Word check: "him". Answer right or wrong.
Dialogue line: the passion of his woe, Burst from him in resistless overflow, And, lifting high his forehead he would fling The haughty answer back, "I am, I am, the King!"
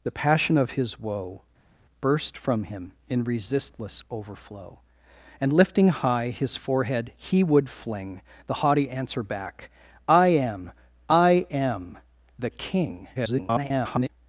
right